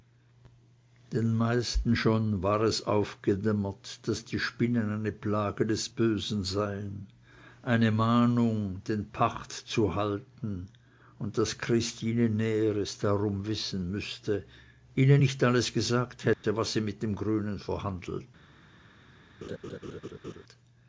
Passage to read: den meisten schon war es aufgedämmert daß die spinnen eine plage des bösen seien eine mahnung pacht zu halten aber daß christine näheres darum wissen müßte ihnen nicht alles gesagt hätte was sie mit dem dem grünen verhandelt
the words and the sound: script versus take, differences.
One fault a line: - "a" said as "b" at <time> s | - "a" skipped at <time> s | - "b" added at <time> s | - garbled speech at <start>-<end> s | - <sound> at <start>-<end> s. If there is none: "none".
- "den" added at 8.9 s
- "aber" said as "und" at 11.2 s
- dropout at 16.3-16.4 s
- "dem" skipped at 17.1 s
- laugh at 19.4-20.4 s